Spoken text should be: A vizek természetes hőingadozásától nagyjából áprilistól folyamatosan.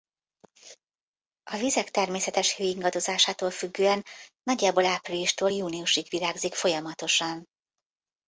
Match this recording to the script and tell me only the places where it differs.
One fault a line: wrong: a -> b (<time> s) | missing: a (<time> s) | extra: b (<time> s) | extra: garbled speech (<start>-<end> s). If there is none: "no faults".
extra: függően (3.5 s)
extra: júniusig virágzik (5.5 s)